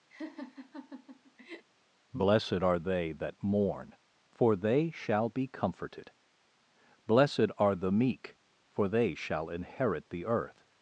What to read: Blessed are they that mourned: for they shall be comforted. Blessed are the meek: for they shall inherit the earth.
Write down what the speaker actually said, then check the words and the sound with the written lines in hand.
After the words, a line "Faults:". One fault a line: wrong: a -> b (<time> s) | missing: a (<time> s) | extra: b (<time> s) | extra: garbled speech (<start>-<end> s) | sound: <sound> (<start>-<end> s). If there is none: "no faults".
Blessed are they that mourn: for they shall be comforted. Blessed are the meek: for they shall inherit the earth.
Faults:
sound: laugh (0.1-1.6 s)
wrong: mourned -> mourn (3.4 s)